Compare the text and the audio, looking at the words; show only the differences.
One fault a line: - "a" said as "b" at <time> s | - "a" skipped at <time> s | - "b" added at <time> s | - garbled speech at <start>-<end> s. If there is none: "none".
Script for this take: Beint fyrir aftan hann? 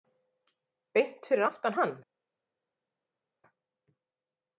none